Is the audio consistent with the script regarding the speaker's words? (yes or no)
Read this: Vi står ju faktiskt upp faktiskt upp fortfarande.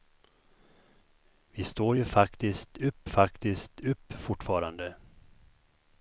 yes